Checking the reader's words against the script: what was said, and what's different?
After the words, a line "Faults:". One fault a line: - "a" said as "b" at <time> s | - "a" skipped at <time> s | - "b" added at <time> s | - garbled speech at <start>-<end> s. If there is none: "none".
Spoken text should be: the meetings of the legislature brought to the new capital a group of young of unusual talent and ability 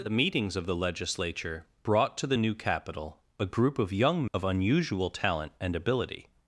the meetings of the legislature brought to the new capital a group of young of unusual talent and ability
Faults:
none